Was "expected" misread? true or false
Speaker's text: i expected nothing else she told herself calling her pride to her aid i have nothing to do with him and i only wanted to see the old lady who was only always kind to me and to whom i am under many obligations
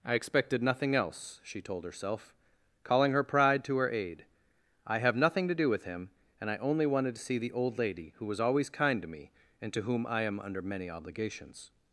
false